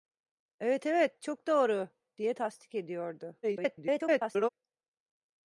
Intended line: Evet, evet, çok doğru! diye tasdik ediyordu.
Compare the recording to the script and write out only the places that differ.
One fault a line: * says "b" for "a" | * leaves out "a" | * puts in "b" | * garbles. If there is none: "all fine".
* garbles